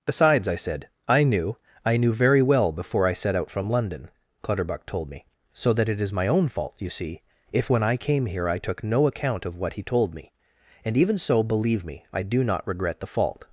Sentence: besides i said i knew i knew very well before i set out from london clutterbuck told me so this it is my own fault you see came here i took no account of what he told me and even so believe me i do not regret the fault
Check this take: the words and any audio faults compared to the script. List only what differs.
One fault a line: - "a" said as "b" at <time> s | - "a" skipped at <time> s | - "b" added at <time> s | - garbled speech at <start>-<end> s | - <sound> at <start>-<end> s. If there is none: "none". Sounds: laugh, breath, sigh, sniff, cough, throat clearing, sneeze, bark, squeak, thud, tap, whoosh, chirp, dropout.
- "this" said as "that" at 5.7 s
- "if when i" added at 7.5 s